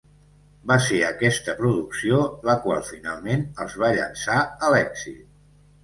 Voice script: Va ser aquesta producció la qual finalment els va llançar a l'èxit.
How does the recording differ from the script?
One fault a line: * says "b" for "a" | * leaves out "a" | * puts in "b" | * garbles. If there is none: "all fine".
all fine